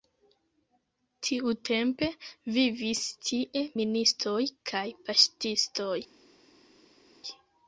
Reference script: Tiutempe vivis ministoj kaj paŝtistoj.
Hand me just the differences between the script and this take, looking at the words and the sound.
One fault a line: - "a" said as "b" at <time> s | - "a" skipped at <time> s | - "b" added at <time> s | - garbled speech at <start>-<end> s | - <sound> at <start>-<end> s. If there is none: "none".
- "tie" added at 3.3 s